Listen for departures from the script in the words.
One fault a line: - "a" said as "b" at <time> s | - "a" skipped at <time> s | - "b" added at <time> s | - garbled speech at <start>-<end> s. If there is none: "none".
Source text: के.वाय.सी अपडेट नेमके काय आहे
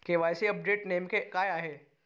none